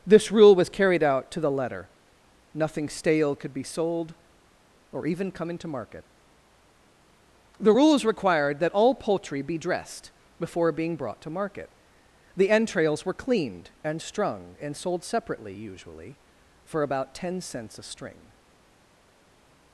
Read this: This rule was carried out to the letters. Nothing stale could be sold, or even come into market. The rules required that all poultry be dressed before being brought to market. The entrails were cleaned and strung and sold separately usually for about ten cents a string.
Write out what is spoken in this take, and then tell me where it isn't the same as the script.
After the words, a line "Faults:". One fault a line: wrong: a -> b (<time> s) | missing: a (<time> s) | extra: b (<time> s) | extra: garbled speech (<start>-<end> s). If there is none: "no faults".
This rule was carried out to the letter. Nothing stale could be sold, or even come into market. The rules required that all poultry be dressed before being brought to market. The entrails were cleaned and strung and sold separately usually for about ten cents a string.
Faults:
wrong: letters -> letter (1.5 s)